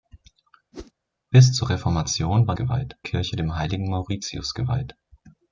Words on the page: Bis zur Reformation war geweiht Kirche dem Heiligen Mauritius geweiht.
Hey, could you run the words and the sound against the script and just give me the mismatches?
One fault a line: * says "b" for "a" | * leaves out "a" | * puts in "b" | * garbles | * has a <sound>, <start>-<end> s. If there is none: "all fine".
* has a whoosh, 0.7-0.9 s